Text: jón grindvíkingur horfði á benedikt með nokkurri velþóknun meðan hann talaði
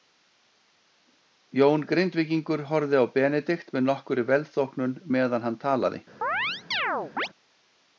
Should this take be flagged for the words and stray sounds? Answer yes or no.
yes